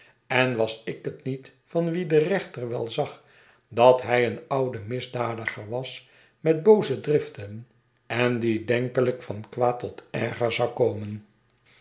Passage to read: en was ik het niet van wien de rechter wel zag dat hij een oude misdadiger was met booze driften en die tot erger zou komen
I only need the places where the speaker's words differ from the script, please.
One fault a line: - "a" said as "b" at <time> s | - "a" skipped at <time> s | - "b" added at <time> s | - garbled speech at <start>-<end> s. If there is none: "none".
- "denkelijk van kwaad" added at 8.7 s